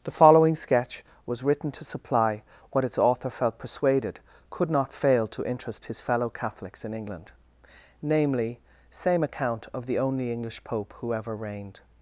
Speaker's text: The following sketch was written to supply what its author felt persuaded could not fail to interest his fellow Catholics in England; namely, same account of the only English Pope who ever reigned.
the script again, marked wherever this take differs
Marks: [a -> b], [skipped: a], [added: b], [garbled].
The following sketch was written to supply what its author felt persuaded could not fail to interest his fellow Catholics in England; namely, same account of the only English Pope who ever reigned.